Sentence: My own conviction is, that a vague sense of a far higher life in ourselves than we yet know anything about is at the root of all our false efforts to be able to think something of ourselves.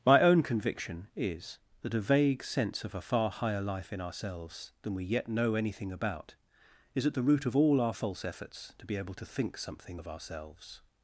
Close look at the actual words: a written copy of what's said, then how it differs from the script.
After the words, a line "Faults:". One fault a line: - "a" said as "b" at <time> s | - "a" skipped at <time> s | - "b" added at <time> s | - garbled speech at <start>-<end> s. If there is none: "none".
My own conviction is, that a vague sense of a far higher life in ourselves than we yet know anything about is at the root of all our false efforts to be able to think something of ourselves.
Faults:
none